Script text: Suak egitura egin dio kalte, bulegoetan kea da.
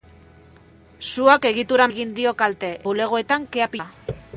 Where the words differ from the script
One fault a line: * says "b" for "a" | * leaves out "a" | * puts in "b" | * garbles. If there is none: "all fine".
all fine